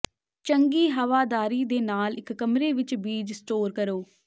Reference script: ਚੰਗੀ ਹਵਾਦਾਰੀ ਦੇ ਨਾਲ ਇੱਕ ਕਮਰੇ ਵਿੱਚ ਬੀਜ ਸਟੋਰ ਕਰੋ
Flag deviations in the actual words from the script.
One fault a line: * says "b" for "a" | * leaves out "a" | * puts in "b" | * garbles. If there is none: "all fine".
all fine